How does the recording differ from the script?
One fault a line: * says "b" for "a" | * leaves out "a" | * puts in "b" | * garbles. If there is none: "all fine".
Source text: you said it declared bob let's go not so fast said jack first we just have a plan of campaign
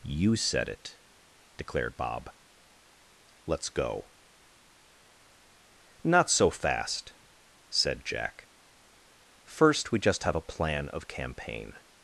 all fine